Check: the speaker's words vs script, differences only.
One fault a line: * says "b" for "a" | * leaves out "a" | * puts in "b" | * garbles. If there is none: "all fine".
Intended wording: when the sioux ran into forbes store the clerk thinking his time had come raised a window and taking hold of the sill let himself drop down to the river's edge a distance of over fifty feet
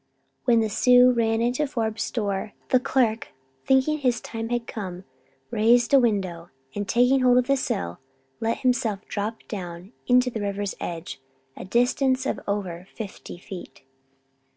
all fine